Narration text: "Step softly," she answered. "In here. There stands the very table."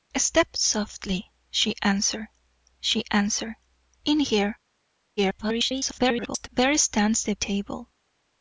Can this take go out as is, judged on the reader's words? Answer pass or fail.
fail